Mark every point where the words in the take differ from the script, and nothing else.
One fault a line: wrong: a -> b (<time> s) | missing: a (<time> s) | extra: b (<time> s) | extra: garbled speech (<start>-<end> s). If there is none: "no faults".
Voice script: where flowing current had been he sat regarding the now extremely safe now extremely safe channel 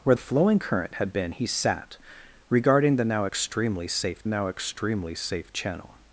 no faults